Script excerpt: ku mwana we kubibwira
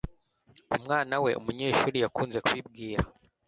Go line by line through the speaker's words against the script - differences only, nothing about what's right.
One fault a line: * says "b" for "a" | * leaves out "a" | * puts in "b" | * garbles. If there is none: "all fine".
* puts in "umunyeshuri yakunze"